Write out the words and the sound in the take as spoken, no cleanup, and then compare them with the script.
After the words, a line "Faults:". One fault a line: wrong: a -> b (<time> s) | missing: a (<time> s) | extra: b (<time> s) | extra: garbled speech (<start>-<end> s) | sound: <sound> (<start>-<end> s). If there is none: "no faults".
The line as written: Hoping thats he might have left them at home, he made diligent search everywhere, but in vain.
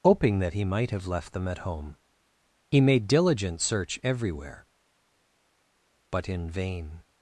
Hoping that he might have left them at home, he made diligent search everywhere, but in vain.
Faults:
wrong: thats -> that (0.4 s)